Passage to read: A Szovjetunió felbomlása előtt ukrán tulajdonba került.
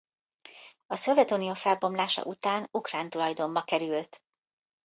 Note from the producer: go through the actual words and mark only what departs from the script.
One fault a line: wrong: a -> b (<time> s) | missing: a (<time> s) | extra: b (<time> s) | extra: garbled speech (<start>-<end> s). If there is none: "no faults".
wrong: előtt -> után (2.2 s)